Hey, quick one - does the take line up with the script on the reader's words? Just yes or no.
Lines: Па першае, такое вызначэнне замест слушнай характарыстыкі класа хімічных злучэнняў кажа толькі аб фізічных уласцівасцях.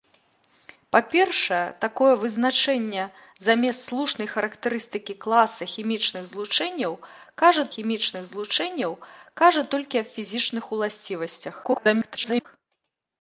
no